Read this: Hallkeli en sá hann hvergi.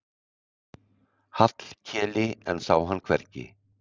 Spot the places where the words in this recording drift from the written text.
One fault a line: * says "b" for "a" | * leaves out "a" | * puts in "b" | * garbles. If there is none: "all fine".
all fine